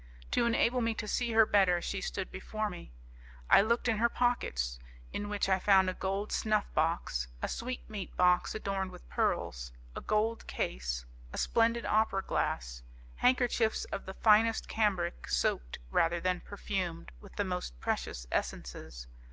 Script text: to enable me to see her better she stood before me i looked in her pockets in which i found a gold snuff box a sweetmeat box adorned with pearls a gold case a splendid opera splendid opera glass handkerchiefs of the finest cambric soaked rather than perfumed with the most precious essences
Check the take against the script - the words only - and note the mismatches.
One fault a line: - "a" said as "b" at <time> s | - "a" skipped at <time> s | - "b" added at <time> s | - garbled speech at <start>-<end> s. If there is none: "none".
- "splendid opera" skipped at 12.2 s